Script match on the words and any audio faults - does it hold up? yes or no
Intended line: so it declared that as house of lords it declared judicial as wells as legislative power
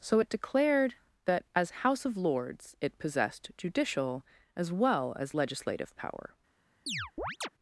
no